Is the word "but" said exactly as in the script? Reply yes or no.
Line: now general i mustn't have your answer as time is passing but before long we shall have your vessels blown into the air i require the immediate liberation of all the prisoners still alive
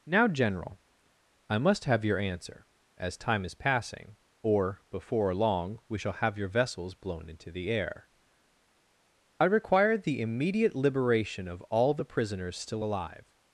no